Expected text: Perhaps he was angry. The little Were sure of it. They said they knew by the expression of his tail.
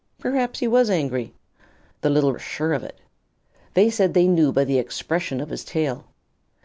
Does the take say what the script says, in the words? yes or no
yes